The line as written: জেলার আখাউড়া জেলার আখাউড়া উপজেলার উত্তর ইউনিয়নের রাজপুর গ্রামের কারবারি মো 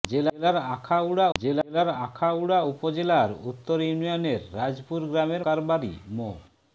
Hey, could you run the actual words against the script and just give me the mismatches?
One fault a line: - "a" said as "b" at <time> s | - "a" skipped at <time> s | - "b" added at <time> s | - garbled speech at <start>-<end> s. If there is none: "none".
none